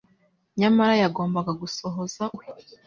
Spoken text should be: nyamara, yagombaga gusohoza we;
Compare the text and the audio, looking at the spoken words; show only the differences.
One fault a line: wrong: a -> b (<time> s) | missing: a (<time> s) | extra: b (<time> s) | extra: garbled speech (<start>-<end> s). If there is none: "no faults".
no faults